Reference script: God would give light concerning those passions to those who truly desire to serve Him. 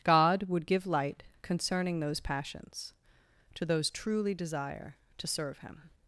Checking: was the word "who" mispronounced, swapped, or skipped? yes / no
yes